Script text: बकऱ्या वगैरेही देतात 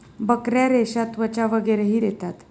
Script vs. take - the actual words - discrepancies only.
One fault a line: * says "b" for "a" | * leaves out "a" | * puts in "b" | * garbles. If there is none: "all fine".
* puts in "रेशा त्वचा"